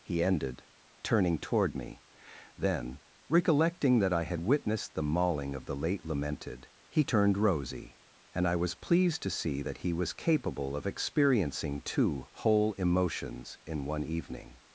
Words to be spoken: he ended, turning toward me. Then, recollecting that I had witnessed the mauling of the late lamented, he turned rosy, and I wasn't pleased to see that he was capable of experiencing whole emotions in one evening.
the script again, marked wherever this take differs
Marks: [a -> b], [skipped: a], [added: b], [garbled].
he ended, turning toward me. Then, recollecting that I had witnessed the mauling of the late lamented, he turned rosy, and I [wasn't -> was] pleased to see that he was capable of experiencing [added: two] whole emotions in one evening.